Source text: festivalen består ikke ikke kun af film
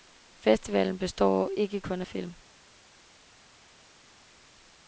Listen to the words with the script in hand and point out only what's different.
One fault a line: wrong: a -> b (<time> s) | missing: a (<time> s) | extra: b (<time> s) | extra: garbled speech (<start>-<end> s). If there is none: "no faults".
missing: ikke (1.8 s)